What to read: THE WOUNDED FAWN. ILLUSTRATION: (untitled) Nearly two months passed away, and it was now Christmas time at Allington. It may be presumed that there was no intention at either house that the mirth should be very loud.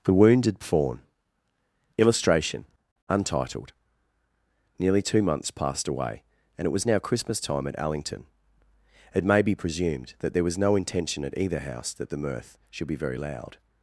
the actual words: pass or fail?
pass